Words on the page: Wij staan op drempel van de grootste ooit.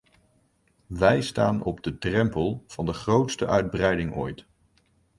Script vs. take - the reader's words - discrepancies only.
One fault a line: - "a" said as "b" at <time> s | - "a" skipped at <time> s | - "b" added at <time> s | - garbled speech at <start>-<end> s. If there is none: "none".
- "de" added at 1.8 s
- "uitbreiding" added at 3.5 s